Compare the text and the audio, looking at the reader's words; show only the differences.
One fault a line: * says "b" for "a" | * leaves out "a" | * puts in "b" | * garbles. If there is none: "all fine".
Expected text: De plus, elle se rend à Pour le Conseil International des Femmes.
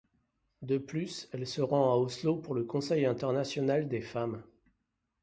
* puts in "Oslo"